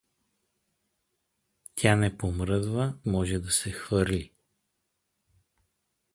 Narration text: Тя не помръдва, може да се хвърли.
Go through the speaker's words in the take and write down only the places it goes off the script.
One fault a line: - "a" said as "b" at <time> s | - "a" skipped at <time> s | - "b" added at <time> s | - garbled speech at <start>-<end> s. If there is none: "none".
none